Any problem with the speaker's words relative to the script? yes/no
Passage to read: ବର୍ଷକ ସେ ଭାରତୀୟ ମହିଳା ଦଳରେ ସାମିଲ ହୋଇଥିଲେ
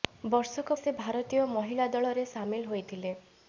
no